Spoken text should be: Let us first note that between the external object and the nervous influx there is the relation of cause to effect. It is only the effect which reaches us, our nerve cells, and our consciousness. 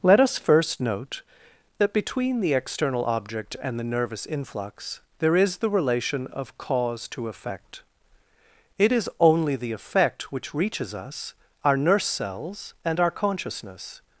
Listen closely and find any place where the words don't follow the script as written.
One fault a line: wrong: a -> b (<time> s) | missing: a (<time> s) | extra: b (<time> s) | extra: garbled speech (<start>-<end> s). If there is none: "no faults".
wrong: nerve -> nurse (11.8 s)